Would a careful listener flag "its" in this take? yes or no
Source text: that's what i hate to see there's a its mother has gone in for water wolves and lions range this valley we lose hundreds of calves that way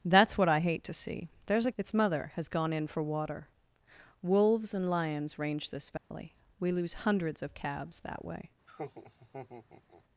no